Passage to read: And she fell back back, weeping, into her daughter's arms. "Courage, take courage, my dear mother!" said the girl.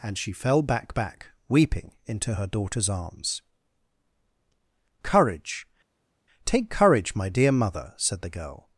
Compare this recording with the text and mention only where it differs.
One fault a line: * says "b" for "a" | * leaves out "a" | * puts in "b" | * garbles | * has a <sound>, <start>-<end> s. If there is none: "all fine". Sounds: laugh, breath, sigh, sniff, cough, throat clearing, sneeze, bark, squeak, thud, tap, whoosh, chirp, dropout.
all fine